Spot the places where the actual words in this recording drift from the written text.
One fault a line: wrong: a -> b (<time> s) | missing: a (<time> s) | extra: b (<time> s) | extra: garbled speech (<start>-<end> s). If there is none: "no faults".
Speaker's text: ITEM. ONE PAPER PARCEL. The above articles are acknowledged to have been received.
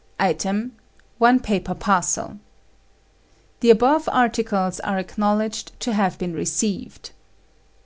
no faults